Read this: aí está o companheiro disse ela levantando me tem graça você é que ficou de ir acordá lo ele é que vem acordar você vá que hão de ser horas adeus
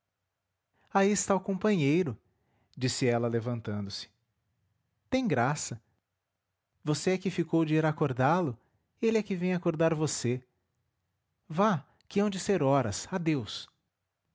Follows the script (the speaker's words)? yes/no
no